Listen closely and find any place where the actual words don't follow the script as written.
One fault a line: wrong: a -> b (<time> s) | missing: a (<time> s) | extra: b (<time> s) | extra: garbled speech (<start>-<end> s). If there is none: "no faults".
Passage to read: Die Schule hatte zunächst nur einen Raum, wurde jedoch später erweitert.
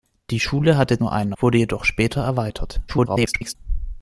missing: zunächst (1.0 s)
missing: Raum (1.3 s)
extra: garbled speech (2.9-3.6 s)